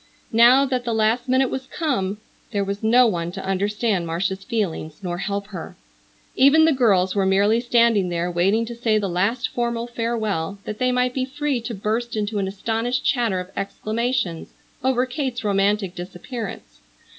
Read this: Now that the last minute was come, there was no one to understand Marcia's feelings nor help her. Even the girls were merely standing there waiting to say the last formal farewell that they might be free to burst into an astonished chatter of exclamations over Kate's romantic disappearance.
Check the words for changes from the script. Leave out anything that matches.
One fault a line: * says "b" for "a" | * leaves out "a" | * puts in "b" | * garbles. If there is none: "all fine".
all fine